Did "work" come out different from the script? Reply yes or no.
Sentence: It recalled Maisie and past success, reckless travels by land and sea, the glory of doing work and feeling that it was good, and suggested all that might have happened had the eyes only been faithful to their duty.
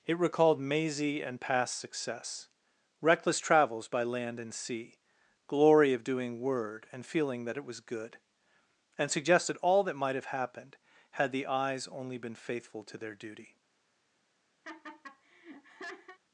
yes